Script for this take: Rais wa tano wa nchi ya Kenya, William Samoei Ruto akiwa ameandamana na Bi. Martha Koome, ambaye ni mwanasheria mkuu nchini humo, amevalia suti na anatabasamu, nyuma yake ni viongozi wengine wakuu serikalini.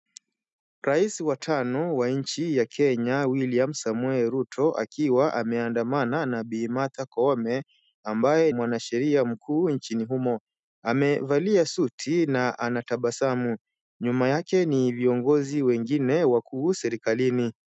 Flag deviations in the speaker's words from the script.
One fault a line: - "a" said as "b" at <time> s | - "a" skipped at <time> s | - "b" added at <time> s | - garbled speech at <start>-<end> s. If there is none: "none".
- "ni" skipped at 8.5 s